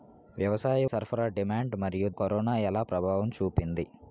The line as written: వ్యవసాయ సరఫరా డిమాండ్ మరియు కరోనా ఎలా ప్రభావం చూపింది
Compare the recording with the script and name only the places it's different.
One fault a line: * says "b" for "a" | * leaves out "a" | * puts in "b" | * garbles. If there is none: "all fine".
all fine